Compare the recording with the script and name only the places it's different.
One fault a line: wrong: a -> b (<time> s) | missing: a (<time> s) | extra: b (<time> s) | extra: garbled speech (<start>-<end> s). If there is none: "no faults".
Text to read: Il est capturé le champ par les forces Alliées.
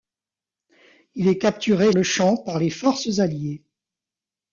no faults